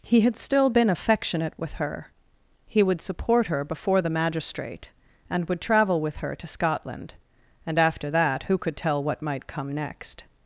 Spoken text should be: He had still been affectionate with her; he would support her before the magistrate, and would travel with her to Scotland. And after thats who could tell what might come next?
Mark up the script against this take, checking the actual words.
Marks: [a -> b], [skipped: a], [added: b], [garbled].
He had still been affectionate with her; he would support her before the magistrate, and would travel with her to Scotland. And after [thats -> that] who could tell what might come next?